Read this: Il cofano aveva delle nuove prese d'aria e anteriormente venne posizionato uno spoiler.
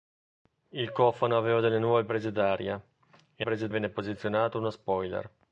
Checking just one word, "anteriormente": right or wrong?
wrong